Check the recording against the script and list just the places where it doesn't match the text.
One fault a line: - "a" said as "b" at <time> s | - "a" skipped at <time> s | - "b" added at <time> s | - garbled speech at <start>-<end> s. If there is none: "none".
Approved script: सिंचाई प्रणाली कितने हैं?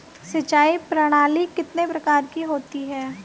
- "प्रकार की होती" added at 1.9 s